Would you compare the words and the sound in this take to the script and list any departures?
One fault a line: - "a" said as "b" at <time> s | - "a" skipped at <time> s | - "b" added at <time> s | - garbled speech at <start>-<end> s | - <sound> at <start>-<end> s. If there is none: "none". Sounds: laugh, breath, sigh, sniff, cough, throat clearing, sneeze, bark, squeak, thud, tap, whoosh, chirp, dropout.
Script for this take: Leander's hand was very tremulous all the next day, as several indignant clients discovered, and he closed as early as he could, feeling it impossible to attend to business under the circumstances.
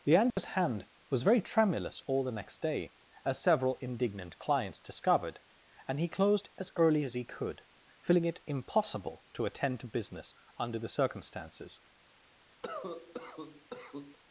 - dropout at 0.3-0.4 s
- cough at 12.6-14.2 s